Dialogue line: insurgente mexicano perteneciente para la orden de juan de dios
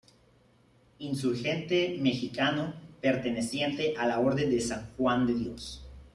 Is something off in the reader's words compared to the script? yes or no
yes